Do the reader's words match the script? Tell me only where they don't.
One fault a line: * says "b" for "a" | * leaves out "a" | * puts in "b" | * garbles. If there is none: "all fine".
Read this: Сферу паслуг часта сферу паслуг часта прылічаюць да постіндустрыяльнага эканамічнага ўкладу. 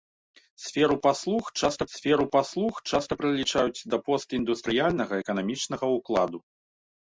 all fine